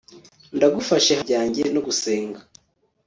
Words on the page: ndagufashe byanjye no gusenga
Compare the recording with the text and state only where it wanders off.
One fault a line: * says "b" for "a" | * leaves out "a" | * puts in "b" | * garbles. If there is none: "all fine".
all fine